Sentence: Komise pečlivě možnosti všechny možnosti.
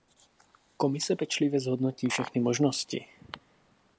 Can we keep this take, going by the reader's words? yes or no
no